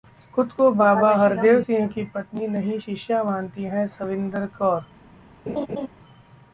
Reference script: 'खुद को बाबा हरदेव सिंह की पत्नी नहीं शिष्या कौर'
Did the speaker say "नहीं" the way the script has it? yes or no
yes